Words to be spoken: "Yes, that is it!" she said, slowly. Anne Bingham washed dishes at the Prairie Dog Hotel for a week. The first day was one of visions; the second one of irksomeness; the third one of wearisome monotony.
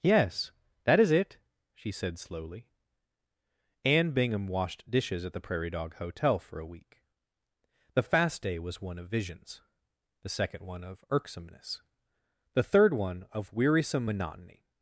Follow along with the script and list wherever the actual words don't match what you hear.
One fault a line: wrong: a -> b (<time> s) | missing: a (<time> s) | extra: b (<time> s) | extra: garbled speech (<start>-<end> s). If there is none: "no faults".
wrong: first -> fast (8.0 s)